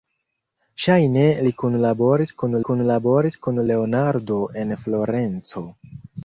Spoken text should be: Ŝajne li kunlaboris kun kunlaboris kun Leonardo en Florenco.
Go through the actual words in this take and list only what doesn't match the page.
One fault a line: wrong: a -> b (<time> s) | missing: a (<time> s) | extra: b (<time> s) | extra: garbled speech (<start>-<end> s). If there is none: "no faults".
no faults